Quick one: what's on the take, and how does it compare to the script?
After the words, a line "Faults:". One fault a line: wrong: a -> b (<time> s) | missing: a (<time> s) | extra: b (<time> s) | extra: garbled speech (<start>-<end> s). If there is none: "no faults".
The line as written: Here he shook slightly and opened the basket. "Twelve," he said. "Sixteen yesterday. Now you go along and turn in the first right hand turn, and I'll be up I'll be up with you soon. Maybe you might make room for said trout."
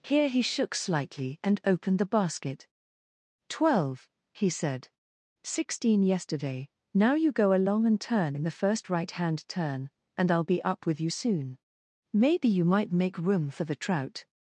Here he shook slightly and opened the basket. "Twelve," he said. "Sixteen yesterday. Now you go along and turn in the first right hand turn, and I'll be up with you soon. Maybe you might make room for the trout."
Faults:
missing: I'll be up (10.9 s)
wrong: said -> the (13.6 s)